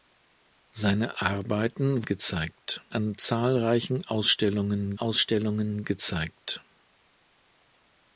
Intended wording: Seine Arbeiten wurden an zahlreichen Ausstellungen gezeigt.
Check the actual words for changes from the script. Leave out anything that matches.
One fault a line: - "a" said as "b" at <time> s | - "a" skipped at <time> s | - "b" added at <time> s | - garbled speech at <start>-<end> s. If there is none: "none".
- "wurden" said as "gezeigt" at 2.0 s
- "Ausstellungen" added at 5.0 s